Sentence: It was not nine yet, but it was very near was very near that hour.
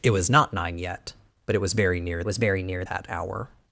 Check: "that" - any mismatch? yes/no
no